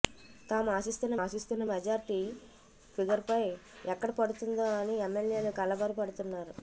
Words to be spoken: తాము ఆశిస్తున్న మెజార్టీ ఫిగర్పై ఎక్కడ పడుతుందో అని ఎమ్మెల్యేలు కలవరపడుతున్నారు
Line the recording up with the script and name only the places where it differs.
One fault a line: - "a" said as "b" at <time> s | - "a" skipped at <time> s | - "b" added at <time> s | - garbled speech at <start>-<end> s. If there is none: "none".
- "ఆశిస్తున్న" added at 1.2 s